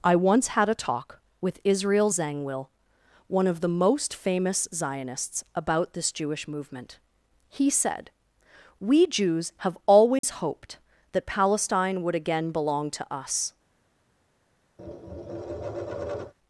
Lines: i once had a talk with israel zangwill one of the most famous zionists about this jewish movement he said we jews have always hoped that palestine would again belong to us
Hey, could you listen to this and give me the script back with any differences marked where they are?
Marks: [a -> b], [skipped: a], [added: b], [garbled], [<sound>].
i once had a talk with israel zangwill one of the most famous zionists about this jewish movement he said we jews have always [dropout] hoped that palestine would again belong to us [tap]